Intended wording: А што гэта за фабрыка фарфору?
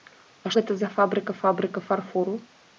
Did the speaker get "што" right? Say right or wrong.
wrong